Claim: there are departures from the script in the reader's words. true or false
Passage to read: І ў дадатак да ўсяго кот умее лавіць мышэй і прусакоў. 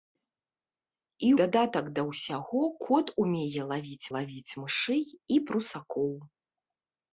true